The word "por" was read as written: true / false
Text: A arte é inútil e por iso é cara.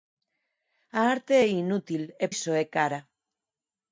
false